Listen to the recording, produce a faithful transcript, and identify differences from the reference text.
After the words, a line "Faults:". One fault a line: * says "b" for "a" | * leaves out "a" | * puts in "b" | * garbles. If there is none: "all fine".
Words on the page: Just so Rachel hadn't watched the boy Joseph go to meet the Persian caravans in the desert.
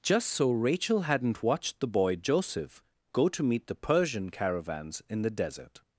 Just so Rachel hadn't watched the boy Joseph go to meet the Persian caravans in the desert.
Faults:
all fine